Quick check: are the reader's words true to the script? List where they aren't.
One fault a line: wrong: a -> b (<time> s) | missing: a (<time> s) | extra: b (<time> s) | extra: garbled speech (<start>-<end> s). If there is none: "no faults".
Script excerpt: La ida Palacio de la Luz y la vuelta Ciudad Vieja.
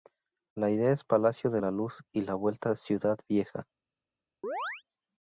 extra: es (0.9 s)